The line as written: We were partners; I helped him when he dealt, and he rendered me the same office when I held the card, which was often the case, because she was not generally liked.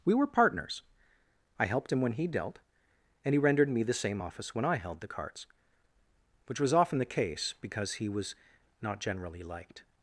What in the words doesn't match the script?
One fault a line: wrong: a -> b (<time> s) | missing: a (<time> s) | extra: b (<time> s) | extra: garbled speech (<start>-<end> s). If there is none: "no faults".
wrong: card -> cards (5.1 s)
wrong: she -> he (7.9 s)